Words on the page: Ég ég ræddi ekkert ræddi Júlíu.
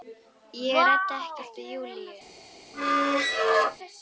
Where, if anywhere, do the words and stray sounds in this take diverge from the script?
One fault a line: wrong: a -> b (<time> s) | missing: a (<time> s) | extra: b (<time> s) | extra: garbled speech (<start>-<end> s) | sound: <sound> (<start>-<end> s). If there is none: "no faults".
missing: ég (0.8 s)
wrong: ræddi -> við (1.6 s)
sound: squeak (2.7-3.8 s)